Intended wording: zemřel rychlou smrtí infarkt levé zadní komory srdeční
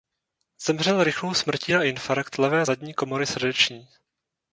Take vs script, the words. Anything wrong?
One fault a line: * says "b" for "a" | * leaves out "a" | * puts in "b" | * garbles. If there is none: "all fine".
* puts in "na"